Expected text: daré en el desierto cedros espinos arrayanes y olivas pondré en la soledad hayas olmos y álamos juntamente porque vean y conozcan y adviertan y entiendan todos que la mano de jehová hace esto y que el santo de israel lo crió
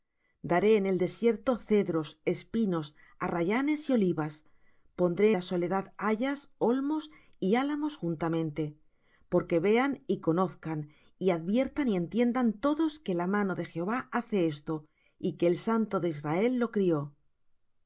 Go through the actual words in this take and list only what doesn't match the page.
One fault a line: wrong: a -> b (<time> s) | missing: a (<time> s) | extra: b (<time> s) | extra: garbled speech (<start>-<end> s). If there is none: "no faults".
missing: en (5.3 s)